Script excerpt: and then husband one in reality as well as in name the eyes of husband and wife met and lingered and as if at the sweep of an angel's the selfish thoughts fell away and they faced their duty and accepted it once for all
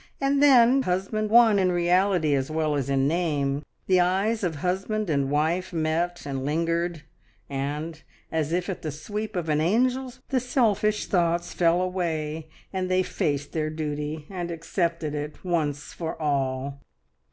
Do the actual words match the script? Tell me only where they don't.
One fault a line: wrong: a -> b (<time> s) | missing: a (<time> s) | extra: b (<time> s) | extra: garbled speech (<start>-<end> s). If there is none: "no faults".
no faults